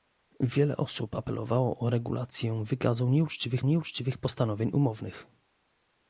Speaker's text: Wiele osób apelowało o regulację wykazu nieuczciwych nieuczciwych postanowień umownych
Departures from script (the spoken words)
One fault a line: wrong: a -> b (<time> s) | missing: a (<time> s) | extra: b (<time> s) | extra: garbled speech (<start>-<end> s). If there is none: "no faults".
no faults